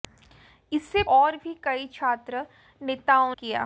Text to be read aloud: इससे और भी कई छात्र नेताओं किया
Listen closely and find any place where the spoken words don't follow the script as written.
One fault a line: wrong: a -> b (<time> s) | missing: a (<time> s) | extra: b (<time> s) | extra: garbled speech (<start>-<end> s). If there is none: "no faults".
no faults